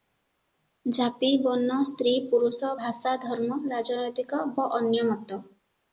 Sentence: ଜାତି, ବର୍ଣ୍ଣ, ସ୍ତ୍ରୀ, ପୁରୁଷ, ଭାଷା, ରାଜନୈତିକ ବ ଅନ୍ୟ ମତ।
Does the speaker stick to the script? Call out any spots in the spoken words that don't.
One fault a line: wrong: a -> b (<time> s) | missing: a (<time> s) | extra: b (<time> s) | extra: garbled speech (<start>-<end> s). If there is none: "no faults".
extra: ଧର୍ମ (3.3 s)